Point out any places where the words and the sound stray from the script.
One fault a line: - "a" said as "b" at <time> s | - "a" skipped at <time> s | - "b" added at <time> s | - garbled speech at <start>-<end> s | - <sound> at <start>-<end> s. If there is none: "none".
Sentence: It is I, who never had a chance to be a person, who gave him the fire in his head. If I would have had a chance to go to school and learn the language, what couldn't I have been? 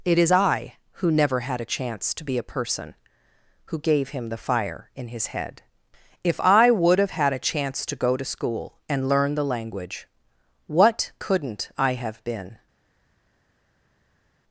none